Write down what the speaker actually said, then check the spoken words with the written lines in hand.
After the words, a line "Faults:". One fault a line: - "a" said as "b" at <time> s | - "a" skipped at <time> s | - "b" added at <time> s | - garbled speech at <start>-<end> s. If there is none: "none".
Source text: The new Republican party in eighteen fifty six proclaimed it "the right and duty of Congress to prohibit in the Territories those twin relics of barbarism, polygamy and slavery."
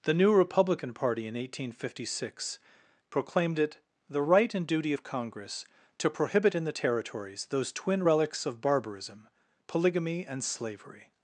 The new Republican party in eighteen fifty six proclaimed it "the right and duty of Congress to prohibit in the Territories those twin relics of barbarism, polygamy and slavery."
Faults:
none